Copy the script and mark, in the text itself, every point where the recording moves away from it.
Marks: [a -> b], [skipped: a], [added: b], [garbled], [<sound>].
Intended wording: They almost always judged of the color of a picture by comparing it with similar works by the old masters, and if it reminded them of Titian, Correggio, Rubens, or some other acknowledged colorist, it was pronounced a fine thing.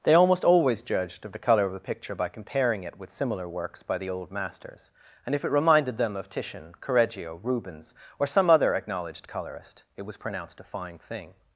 They almost always judged of the color of a picture by comparing it with similar works by the old masters, and if it reminded them of Titian, Correggio, Rubens, or some other acknowledged colorist, it was pronounced a fine thing.